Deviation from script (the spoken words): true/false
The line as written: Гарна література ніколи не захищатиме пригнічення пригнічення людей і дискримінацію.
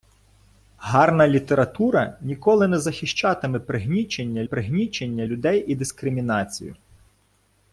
false